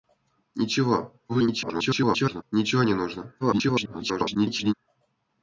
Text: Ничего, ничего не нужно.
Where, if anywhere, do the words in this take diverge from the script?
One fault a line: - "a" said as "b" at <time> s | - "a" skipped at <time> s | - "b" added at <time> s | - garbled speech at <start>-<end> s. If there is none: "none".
- garbled speech at 1.3-2.4 s
- garbled speech at 3.4-4.7 s